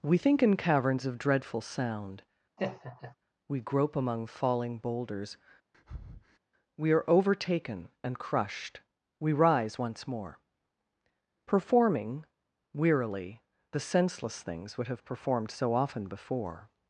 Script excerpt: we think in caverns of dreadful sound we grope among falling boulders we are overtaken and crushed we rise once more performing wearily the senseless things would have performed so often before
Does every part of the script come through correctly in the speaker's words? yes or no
yes